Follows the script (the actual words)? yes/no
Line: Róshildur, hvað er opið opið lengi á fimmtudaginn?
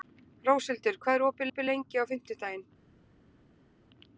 yes